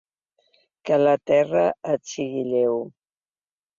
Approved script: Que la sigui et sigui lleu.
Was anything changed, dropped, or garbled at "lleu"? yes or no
no